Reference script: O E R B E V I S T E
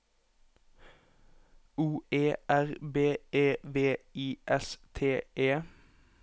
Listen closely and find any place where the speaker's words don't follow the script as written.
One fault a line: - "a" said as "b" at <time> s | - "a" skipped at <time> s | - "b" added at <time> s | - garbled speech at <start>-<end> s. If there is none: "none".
none